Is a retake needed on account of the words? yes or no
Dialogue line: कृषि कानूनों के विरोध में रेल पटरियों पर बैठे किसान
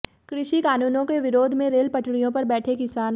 no